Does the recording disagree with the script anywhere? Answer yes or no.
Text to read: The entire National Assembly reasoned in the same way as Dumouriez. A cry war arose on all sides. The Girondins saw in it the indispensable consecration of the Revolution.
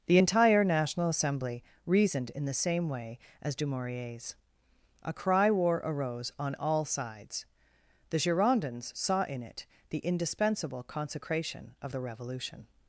no